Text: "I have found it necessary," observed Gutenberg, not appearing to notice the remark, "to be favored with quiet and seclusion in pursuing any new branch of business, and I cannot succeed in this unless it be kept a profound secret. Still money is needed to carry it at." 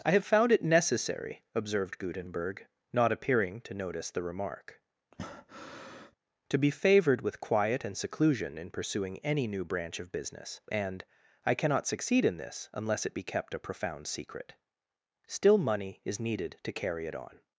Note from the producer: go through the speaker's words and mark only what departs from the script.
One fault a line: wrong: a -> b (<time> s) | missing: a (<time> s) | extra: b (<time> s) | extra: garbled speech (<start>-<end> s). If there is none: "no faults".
wrong: at -> on (17.1 s)